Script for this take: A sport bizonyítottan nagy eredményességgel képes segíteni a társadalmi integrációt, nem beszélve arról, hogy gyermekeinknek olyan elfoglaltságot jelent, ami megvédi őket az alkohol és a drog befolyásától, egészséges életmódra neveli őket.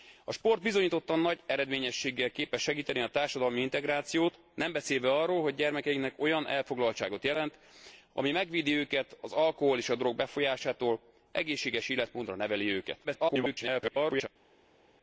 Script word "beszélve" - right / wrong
right